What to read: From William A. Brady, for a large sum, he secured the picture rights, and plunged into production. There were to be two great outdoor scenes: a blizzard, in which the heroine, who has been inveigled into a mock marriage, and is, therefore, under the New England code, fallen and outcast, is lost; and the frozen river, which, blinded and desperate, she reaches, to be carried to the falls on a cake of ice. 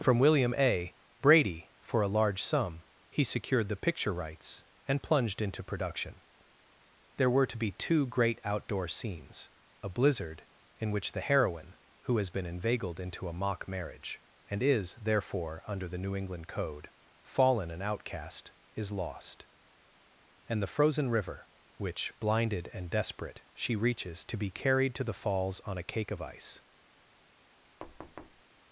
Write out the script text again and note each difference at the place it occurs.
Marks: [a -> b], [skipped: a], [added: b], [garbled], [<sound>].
From William A. Brady, for a large sum, he secured the picture rights, and plunged into production. There were to be two great outdoor scenes: a blizzard, in which the heroine, who has been inveigled into a mock marriage, and is, therefore, under the New England code, fallen and outcast, is lost; and the frozen river, which, blinded and desperate, she reaches, to be carried to the falls on a cake of ice. [thud]